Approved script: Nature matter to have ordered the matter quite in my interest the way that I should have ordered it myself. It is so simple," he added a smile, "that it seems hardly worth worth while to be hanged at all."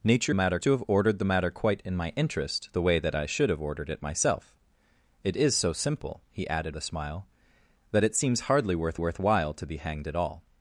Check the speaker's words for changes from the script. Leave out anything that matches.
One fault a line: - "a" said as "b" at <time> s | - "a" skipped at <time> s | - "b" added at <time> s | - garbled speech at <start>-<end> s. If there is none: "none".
none